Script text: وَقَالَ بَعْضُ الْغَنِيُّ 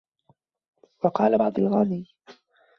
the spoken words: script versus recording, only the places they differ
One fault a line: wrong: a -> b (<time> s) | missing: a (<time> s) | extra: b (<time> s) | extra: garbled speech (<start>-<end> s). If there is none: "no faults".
no faults